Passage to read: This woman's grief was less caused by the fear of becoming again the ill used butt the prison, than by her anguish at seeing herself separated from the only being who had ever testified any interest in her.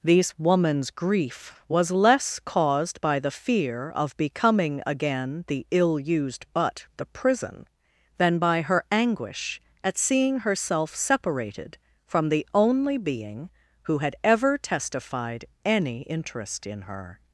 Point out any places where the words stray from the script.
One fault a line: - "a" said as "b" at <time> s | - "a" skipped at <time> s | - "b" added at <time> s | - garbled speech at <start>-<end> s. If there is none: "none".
none